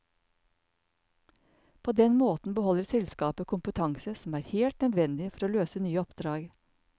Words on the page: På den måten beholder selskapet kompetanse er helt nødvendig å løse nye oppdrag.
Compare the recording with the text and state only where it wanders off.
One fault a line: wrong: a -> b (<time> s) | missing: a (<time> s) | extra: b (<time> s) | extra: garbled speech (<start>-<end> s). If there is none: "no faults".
extra: som (4.2 s)
extra: for (5.3 s)